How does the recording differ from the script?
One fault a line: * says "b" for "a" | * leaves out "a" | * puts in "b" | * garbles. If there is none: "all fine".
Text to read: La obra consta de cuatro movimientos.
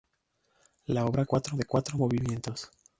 * says "cuatro" for "consta"